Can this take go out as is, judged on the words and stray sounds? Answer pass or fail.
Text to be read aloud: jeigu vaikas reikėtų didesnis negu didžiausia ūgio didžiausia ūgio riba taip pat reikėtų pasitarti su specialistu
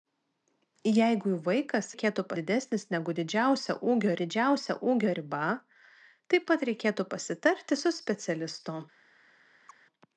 fail